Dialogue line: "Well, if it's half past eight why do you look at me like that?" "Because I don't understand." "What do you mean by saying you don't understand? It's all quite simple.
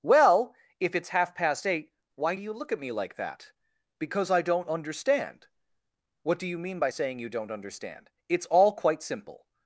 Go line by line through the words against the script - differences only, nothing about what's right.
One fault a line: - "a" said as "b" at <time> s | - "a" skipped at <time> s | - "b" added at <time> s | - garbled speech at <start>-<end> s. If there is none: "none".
none